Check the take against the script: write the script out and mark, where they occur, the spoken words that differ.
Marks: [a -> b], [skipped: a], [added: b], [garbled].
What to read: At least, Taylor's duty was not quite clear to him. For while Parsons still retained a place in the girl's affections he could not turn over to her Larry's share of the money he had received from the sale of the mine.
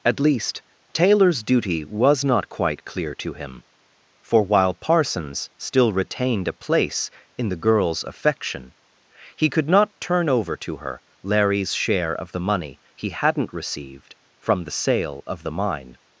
At least, Taylor's duty was not quite clear to him. For while Parsons still retained a place in the girl's [affections -> affection] he could not turn over to her Larry's share of the money he [had -> hadn't] received from the sale of the mine.